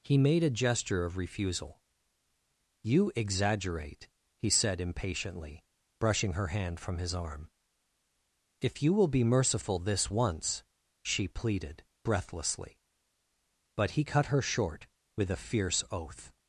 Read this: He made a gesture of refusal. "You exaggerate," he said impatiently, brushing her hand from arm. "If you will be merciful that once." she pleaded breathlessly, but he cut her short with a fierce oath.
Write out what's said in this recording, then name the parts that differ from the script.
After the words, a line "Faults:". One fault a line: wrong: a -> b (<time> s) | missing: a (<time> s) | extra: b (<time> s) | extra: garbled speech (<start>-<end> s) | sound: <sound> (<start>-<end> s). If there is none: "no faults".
He made a gesture of refusal. "You exaggerate," he said impatiently, brushing her hand from his arm. "If you will be merciful this once." she pleaded breathlessly, but he cut her short with a fierce oath.
Faults:
extra: his (7.0 s)
wrong: that -> this (9.8 s)